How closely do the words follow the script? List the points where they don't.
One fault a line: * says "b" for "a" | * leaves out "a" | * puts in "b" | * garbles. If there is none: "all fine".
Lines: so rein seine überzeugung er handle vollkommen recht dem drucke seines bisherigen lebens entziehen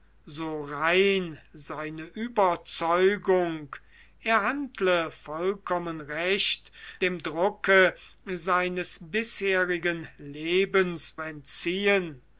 all fine